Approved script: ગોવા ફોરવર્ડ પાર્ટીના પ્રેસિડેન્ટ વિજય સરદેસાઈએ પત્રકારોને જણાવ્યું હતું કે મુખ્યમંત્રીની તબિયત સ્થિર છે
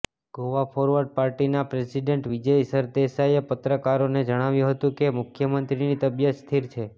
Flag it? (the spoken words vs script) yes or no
no